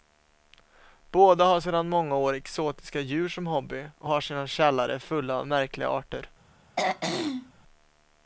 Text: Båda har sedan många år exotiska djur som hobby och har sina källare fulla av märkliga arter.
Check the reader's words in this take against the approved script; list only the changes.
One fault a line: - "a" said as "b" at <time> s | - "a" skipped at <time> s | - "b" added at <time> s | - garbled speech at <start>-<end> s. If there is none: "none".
none